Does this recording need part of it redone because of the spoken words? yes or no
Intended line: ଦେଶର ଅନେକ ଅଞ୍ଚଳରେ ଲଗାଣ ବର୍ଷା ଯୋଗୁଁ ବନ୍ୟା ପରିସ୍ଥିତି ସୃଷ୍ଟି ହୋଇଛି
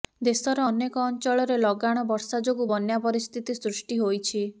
no